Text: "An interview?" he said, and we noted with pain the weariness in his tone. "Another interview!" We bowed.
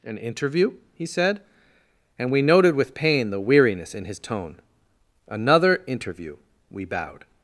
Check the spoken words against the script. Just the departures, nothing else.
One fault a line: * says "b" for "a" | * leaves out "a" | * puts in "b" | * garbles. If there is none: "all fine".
all fine